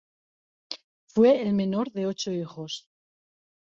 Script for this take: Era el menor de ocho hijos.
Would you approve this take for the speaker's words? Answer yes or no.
no